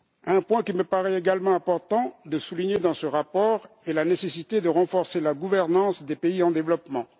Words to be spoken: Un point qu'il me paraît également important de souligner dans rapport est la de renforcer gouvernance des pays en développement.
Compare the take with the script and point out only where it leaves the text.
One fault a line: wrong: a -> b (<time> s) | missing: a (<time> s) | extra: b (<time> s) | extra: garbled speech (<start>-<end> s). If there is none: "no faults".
extra: ce (2.9 s)
extra: nécessité (4.0 s)
extra: la (5.2 s)